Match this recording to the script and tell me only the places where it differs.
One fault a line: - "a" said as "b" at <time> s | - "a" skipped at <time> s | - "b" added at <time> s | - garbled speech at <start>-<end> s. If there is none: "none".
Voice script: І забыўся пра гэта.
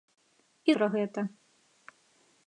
- "забыўся" skipped at 0.8 s